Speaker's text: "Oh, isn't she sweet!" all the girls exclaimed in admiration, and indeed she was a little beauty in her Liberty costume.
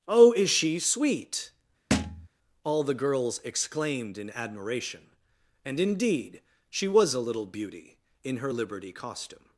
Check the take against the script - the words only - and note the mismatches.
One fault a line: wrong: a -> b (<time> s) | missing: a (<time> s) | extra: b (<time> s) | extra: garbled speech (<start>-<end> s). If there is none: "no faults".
wrong: isn't -> is (0.3 s)